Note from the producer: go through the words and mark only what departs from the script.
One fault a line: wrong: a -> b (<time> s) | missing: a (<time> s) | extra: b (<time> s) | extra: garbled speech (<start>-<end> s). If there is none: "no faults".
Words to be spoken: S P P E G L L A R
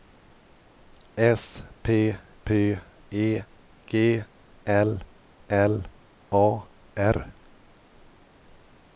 no faults